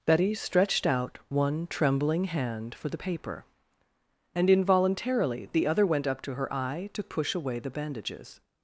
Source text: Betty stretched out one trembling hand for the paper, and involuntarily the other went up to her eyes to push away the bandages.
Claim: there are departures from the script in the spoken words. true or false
true